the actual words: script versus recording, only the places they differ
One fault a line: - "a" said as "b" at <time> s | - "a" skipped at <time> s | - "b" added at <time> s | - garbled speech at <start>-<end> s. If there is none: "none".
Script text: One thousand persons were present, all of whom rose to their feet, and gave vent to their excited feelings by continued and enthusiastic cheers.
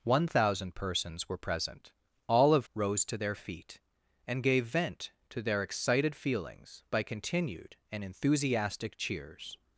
- "whom" skipped at 2.7 s